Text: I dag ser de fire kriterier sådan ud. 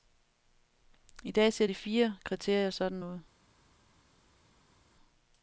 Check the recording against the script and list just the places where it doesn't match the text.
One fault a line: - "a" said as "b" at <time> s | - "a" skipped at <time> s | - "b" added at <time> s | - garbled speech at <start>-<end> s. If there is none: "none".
none